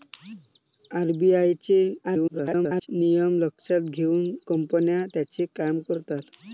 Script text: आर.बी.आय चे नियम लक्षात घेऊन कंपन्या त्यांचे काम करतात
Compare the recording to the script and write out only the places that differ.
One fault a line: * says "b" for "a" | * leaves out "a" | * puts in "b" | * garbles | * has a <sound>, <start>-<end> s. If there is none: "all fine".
* garbles